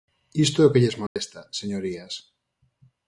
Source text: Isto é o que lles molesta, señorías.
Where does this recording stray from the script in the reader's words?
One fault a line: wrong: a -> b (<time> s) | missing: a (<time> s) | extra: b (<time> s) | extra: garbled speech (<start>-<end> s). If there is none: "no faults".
no faults